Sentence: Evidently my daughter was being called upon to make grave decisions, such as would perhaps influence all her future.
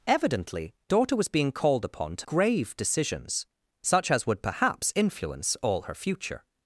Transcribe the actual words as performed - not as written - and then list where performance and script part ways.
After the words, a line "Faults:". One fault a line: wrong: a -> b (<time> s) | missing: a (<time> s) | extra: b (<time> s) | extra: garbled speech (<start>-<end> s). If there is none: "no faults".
Evidently daughter was being called upon to grave decisions, such as would perhaps influence all her future.
Faults:
missing: my (0.7 s)
missing: make (2.3 s)